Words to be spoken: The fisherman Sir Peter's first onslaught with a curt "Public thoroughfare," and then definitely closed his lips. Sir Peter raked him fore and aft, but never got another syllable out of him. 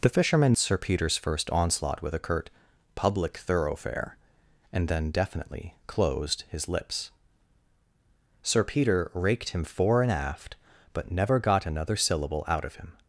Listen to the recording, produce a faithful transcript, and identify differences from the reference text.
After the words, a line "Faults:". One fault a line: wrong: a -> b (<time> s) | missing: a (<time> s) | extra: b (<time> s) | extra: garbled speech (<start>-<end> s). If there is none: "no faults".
The fisherman Sir Peter's first onslaught with a curt "Public thoroughfare," and then definitely closed his lips. Sir Peter raked him fore and aft, but never got another syllable out of him.
Faults:
no faults